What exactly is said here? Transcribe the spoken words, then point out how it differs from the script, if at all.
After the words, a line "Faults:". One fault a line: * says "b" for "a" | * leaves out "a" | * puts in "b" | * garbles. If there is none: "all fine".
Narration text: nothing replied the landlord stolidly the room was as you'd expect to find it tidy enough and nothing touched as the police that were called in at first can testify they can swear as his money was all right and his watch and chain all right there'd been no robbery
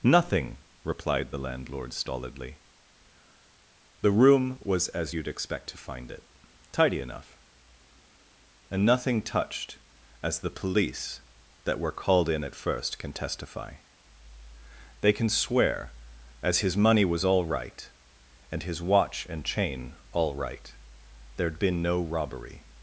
nothing replied the landlord stolidly the room was as you'd expect to find it tidy enough and nothing touched as the police that were called in at first can testify they can swear as his money was all right and his watch and chain all right there'd been no robbery
Faults:
all fine